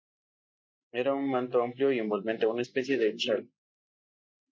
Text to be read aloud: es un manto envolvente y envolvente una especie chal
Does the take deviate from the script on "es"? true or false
true